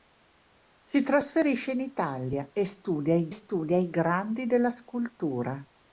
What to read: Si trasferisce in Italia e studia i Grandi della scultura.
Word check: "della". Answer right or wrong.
right